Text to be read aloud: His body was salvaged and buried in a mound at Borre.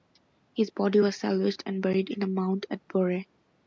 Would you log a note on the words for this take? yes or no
no